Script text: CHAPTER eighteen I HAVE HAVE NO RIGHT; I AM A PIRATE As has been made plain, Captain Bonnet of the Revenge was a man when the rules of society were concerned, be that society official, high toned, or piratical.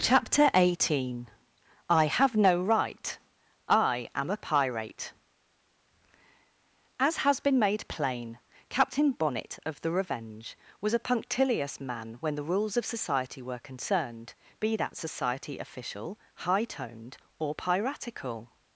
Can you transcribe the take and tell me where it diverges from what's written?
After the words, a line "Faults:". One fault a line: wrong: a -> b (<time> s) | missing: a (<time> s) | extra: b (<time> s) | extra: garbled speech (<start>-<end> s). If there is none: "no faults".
CHAPTER eighteen I HAVE NO RIGHT; I AM A PIRATE As has been made plain, Captain Bonnet of the Revenge was a punctilious man when the rules of society were concerned, be that society official, high toned, or piratical.
Faults:
missing: HAVE (2.4 s)
extra: punctilious (11.1 s)